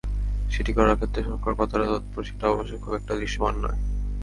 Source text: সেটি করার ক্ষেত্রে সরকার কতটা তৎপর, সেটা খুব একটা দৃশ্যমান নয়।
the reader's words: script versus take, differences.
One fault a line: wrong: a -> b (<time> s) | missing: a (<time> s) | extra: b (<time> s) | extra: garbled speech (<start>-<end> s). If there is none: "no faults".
extra: অবশ্য (2.5 s)